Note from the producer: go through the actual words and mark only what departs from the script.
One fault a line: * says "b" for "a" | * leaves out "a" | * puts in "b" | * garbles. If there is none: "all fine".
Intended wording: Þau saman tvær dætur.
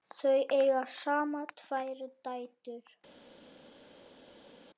* puts in "eiga"